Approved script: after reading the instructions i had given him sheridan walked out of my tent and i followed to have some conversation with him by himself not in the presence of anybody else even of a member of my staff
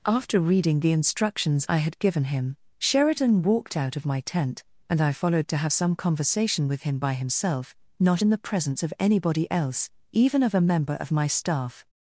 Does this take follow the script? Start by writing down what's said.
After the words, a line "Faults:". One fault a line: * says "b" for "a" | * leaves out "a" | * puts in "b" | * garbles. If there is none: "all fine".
after reading the instructions i had given him sheridan walked out of my tent and i followed to have some conversation with him by himself not in the presence of anybody else even of a member of my staff
Faults:
all fine